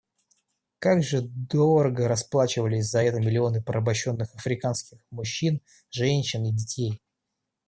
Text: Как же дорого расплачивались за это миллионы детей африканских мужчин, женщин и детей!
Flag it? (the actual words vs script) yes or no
yes